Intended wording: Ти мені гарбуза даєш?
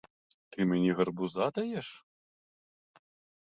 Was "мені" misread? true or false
false